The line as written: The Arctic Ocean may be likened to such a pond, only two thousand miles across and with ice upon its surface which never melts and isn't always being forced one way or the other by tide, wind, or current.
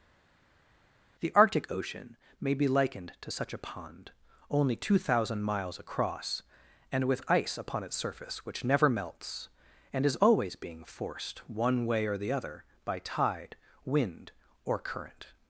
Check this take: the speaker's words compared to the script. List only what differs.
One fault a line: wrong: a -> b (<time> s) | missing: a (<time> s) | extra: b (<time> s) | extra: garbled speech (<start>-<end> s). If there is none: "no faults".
wrong: isn't -> is (10.0 s)